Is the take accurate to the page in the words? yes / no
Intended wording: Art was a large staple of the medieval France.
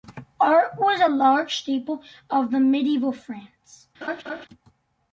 yes